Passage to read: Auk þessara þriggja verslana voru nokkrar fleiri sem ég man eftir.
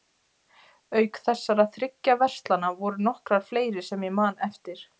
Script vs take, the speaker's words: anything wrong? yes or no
no